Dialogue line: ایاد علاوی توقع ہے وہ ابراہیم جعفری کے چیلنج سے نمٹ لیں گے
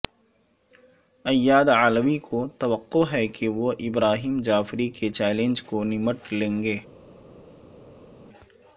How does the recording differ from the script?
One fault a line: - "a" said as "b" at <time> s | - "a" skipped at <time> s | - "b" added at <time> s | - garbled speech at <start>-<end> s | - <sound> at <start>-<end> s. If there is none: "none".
- "کو" added at 2.2 s
- "کہ" added at 3.3 s
- "سے" said as "کو" at 5.6 s